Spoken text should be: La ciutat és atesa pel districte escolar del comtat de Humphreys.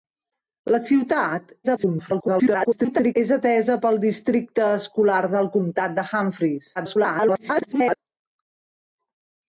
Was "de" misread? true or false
false